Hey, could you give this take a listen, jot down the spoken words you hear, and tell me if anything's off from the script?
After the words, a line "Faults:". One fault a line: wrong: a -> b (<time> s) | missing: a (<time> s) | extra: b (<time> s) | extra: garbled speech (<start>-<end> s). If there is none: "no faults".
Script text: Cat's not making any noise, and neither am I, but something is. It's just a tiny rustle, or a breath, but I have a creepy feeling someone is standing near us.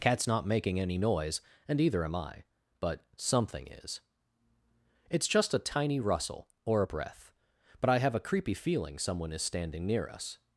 Cat's not making any noise, and either am I, but something is. It's just a tiny rustle, or a breath, but I have a creepy feeling someone is standing near us.
Faults:
wrong: neither -> either (1.8 s)